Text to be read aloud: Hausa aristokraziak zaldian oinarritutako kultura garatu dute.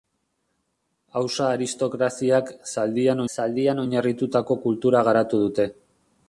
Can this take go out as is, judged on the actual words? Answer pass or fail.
fail